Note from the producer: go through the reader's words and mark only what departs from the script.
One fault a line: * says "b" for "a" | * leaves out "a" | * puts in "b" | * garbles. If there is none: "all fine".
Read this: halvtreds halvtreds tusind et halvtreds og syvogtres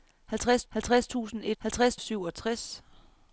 all fine